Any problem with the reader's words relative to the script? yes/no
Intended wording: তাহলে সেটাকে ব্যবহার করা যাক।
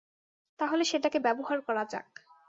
no